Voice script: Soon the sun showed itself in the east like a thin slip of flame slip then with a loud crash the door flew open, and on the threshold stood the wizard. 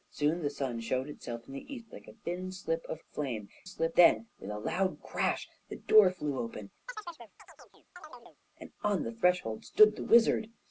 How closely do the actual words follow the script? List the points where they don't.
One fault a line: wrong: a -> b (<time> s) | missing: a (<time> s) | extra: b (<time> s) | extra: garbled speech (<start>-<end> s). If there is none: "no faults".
no faults